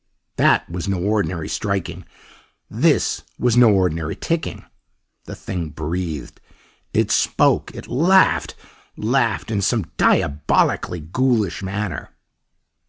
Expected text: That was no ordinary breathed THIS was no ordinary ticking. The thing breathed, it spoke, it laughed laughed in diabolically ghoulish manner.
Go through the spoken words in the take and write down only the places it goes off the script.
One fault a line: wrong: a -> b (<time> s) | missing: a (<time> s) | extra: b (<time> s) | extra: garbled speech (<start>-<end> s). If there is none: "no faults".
wrong: breathed -> striking (1.5 s)
extra: some (9.6 s)